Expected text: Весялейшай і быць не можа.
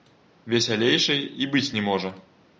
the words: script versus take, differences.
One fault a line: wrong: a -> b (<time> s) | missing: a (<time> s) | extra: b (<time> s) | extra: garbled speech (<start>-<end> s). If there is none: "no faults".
no faults